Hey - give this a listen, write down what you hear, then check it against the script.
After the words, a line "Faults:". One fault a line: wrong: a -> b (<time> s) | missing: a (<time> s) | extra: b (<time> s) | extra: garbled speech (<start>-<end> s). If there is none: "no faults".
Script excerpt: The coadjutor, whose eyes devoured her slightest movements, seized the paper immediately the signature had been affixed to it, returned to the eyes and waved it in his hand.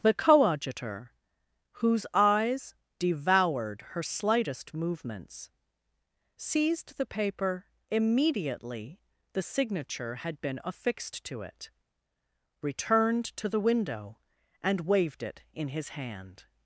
The coadjutor, whose eyes devoured her slightest movements, seized the paper immediately the signature had been affixed to it, returned to the window and waved it in his hand.
Faults:
wrong: eyes -> window (13.6 s)